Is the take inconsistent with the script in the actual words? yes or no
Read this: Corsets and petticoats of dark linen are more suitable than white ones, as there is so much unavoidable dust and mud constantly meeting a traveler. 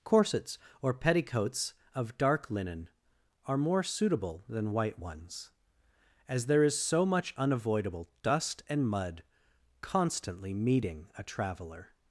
yes